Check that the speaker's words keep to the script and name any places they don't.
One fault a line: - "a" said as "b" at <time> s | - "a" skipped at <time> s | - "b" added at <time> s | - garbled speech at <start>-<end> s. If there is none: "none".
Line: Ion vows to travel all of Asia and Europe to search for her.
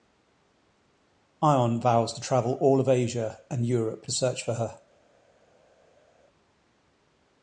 - "to" skipped at 4.1 s